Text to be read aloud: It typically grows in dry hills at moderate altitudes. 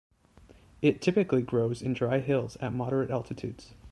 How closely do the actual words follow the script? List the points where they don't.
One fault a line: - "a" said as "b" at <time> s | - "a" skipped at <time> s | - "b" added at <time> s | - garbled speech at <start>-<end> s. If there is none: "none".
none